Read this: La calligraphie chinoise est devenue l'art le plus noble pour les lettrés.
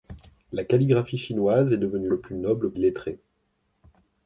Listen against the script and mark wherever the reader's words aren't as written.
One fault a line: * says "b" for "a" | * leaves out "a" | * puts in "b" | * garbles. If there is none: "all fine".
* leaves out "l'art"
* leaves out "pour les"